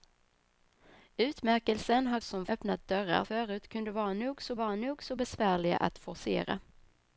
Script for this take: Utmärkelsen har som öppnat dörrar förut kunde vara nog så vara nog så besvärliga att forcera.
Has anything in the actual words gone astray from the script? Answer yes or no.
no